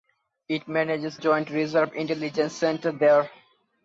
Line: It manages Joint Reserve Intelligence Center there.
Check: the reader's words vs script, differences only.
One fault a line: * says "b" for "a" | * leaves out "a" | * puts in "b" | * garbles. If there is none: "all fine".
all fine